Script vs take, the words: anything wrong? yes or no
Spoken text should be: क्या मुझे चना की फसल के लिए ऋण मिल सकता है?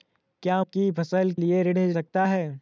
yes